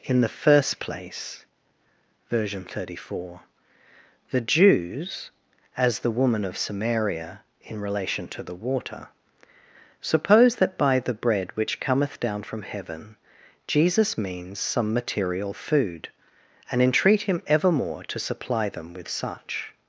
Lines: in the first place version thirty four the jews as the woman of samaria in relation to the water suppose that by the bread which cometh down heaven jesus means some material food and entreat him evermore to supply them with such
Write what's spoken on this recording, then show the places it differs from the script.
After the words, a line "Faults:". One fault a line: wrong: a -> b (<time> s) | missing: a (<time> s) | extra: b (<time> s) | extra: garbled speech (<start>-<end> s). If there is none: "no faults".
in the first place version thirty four the jews as the woman of samaria in relation to the water suppose that by the bread which cometh down from heaven jesus means some material food and entreat him evermore to supply them with such
Faults:
extra: from (12.4 s)